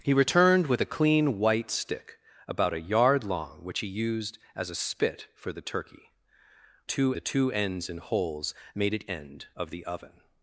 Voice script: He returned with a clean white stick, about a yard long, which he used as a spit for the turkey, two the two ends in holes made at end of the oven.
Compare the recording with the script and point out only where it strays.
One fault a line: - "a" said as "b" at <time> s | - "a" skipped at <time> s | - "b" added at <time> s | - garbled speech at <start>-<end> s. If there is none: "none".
none